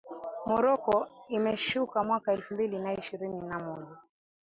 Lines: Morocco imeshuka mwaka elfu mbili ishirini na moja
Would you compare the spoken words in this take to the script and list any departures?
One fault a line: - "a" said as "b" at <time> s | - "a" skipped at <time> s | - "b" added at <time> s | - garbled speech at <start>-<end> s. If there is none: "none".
- "na" added at 2.8 s